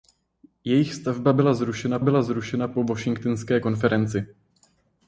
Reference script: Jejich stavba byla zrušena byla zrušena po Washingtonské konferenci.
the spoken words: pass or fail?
pass